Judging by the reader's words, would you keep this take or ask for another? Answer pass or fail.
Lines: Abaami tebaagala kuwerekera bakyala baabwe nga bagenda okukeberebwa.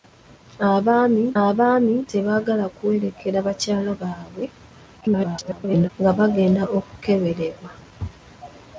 fail